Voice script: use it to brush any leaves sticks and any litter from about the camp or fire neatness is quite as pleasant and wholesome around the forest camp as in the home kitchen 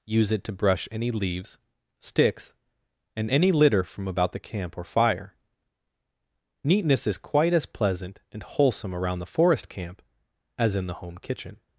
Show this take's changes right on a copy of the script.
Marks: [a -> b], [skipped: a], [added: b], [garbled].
use it to brush any leaves sticks and any litter from about the camp or fire neatness is quite as pleasant and wholesome around the forest camp as in the home kitchen